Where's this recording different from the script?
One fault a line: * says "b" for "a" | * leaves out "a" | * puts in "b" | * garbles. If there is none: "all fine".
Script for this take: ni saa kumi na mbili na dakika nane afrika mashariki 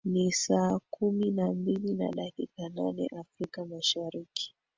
all fine